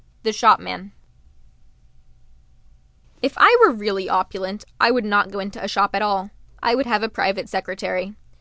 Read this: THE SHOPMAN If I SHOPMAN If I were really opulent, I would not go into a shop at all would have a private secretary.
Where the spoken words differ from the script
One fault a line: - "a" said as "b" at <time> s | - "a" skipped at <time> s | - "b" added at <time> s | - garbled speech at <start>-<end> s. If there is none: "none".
- "SHOPMAN If I" skipped at 3.5 s
- "I" added at 6.6 s